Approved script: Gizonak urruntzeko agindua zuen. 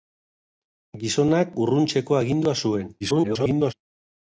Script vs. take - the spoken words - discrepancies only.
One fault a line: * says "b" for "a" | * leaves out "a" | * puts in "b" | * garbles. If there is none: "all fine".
* garbles